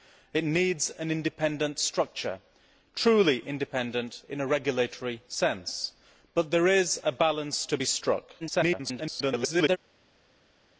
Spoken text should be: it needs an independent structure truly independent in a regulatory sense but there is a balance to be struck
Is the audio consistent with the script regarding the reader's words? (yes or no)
no